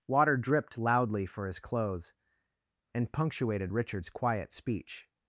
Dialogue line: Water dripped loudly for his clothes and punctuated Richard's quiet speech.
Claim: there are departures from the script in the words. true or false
false